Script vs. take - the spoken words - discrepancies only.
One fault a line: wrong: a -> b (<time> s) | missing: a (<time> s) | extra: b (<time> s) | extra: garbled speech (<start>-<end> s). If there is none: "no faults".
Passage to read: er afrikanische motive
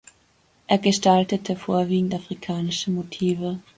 extra: gestaltete vorwiegend (0.8 s)